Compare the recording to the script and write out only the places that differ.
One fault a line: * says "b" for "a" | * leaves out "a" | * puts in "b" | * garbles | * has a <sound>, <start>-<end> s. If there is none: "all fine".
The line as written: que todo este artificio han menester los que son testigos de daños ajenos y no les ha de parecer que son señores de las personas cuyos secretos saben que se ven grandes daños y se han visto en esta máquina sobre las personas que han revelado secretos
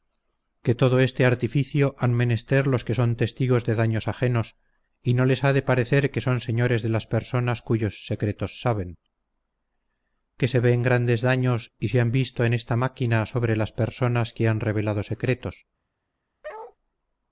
* has a bark, 16.4-16.8 s